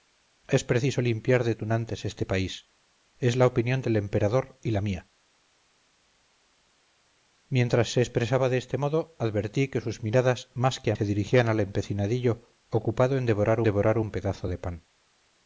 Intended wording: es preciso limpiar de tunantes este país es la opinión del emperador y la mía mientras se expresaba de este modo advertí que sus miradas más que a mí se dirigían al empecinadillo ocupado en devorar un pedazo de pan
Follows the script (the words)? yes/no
no